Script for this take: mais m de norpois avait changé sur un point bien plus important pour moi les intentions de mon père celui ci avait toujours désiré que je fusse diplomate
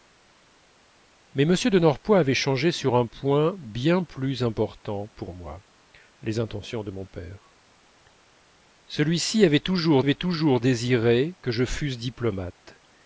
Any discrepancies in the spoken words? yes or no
yes